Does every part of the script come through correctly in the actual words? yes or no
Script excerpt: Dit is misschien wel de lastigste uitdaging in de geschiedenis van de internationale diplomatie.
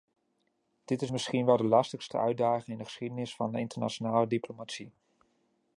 yes